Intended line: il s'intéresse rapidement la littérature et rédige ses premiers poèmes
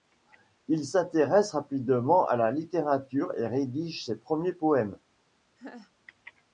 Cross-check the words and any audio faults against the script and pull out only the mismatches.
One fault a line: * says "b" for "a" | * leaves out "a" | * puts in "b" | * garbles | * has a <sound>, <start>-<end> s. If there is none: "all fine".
* puts in "à"
* has a laugh, 5.6-5.9 s